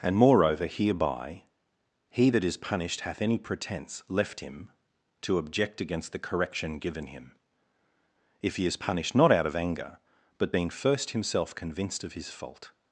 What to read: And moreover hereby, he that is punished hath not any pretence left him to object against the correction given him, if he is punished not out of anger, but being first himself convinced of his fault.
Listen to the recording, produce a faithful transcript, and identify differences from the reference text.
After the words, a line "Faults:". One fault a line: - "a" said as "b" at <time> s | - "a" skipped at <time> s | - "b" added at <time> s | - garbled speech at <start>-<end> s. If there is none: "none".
And moreover hereby, he that is punished hath any pretence left him to object against the correction given him, if he is punished not out of anger, but being first himself convinced of his fault.
Faults:
- "not" skipped at 3.2 s